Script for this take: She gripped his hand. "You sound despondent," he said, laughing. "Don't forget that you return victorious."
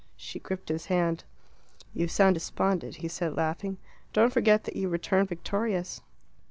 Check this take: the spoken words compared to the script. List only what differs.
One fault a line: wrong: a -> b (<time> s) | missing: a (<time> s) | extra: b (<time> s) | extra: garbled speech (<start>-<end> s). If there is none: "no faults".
no faults